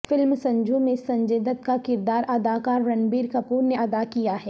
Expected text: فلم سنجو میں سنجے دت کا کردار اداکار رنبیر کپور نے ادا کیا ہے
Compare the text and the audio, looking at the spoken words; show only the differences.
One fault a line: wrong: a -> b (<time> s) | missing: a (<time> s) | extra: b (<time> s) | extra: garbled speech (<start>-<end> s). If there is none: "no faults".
no faults